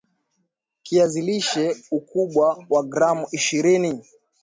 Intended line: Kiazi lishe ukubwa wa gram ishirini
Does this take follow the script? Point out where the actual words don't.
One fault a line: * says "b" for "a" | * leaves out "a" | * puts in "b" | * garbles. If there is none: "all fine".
all fine